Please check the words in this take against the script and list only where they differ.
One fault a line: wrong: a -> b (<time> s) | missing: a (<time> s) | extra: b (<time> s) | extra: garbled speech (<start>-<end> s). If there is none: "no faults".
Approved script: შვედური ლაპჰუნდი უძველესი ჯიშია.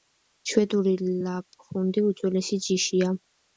no faults